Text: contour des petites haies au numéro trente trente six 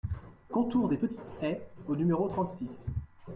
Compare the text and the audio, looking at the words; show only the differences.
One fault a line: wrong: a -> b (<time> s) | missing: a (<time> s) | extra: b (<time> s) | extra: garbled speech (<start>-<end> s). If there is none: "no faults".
missing: trente (2.5 s)